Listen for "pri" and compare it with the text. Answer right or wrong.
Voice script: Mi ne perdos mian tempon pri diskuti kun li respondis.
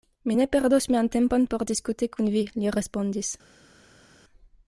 wrong